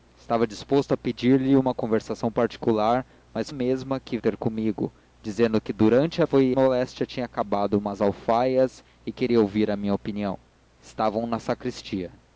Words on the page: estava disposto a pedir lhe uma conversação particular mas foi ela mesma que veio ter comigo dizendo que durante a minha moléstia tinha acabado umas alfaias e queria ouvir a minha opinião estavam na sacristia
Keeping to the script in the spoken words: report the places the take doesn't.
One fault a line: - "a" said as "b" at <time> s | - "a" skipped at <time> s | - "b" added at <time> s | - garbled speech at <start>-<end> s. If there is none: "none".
- "foi ela" skipped at 3.5 s
- "veio" skipped at 4.2 s
- "minha" said as "foi" at 6.2 s